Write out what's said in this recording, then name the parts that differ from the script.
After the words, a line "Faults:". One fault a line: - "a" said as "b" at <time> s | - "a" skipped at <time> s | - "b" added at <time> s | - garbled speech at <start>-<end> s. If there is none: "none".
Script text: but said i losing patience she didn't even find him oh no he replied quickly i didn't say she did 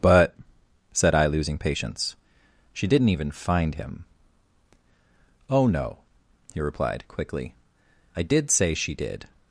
but said i losing patience she didn't even find him oh no he replied quickly i did say she did
Faults:
- "didn't" said as "did" at 8.2 s